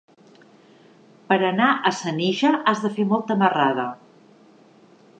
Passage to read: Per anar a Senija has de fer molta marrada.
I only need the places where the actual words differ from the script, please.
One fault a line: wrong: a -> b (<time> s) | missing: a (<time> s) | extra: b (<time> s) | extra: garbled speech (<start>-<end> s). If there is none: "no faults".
no faults